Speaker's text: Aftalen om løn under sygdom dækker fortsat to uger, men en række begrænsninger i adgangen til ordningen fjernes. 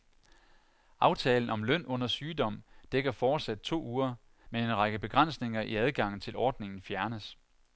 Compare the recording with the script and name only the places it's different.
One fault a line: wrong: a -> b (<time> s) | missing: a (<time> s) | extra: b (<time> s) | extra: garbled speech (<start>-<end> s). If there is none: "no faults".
no faults